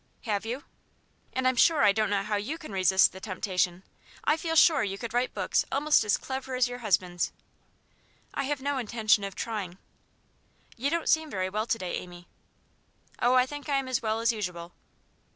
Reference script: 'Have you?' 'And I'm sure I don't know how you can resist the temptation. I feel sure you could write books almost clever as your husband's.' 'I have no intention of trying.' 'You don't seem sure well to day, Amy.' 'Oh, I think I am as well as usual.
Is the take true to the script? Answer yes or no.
no